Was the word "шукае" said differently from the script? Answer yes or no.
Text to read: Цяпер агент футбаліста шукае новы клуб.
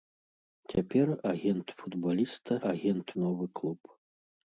yes